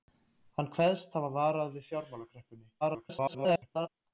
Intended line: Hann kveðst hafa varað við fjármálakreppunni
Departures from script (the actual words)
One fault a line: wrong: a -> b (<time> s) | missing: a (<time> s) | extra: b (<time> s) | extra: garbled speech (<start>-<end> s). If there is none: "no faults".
extra: garbled speech (2.8-3.9 s)